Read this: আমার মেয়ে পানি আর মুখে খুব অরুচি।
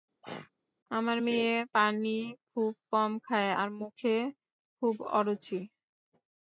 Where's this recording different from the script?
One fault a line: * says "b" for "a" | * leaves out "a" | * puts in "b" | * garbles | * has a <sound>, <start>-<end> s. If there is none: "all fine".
* has a throat clearing, 0.2-0.5 s
* puts in "খুব কম খায়"